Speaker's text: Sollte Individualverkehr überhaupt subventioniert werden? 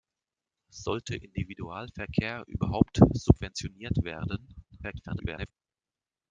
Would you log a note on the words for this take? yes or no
yes